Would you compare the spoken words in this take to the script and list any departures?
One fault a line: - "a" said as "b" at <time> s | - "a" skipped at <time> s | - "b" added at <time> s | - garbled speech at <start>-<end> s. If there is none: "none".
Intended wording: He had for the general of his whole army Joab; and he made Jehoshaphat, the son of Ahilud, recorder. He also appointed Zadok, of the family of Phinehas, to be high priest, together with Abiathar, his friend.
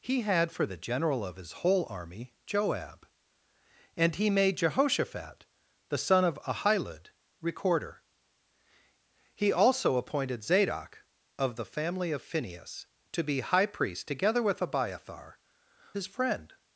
none